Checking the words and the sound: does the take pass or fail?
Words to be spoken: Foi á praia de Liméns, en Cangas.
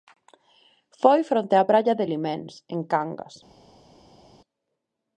fail